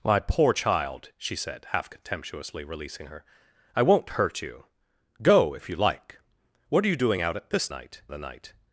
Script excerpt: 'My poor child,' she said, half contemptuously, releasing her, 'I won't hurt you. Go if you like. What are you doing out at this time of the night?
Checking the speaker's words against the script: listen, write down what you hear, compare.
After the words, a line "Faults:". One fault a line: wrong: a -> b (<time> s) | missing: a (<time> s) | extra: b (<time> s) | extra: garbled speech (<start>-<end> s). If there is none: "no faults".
'My poor child,' she said, half contemptuously, releasing her, 'I won't hurt you. Go if you like. What are you doing out at this night of the night?
Faults:
wrong: time -> night (7.7 s)